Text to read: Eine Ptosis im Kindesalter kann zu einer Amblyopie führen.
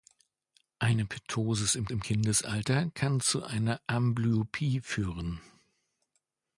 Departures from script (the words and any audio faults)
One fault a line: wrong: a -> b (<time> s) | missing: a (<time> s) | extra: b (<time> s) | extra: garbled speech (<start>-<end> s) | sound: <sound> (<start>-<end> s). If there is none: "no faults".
extra: im (1.9 s)